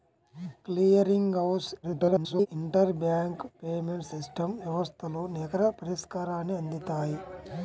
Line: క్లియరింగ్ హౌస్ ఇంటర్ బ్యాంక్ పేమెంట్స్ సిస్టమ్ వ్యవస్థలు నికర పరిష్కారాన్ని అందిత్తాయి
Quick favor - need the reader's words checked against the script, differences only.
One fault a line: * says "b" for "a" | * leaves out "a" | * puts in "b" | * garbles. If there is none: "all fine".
* garbles